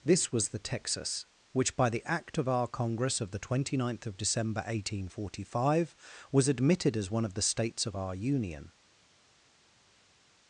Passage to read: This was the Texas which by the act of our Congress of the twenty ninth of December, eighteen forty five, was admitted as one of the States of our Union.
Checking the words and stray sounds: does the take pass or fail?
pass